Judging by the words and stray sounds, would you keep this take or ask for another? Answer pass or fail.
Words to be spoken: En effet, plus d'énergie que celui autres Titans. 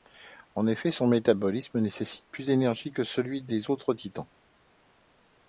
fail